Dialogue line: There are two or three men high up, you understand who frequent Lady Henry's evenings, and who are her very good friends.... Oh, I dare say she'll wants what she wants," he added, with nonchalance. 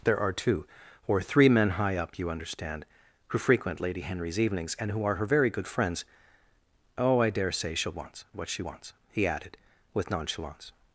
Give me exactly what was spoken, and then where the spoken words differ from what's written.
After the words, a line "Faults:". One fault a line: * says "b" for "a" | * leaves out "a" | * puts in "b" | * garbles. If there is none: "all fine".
There are two or three men high up, you understand who frequent Lady Henry's evenings, and who are her very good friends.... Oh, I dare say she'll wants what she wants," he added, with nonchalance.
Faults:
all fine